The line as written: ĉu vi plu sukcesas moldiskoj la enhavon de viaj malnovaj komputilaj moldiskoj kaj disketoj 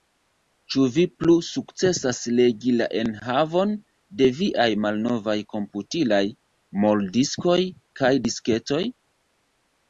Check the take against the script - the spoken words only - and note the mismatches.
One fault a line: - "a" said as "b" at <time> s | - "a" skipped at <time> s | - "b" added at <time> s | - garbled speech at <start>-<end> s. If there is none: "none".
- "moldiskoj" said as "legi" at 2.4 s